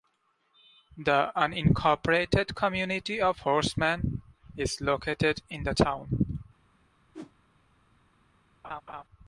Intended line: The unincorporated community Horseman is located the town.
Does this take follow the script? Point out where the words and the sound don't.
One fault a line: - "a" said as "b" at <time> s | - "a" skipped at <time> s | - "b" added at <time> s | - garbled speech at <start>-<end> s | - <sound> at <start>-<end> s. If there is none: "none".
- "of" added at 3.2 s
- "in" added at 5.5 s
- whoosh at 7.1-7.3 s
- laugh at 8.6-9.0 s